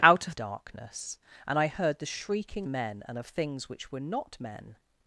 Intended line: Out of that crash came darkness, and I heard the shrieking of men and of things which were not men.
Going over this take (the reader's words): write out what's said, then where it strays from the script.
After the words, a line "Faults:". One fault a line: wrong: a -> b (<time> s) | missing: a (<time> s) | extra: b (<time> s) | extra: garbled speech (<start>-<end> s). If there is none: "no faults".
Out of darkness, and I heard the shrieking men and of things which were not men.
Faults:
missing: that crash came (0.3 s)
missing: of (2.7 s)